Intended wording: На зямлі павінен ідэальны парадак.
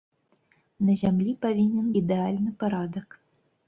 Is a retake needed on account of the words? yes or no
no